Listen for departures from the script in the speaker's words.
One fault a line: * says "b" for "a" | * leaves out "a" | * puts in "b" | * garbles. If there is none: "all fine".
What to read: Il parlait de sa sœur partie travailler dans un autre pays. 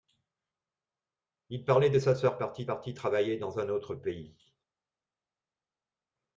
* puts in "partie"